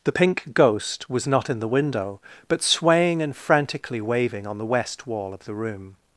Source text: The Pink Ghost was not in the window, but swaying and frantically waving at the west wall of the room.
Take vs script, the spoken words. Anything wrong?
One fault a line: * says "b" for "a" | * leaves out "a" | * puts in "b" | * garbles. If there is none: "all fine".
* says "on" for "at"